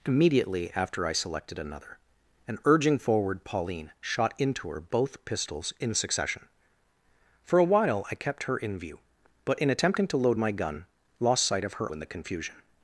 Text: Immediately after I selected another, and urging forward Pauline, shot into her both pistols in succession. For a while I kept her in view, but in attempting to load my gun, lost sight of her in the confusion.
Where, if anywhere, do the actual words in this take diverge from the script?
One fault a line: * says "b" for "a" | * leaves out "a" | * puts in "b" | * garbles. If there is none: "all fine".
all fine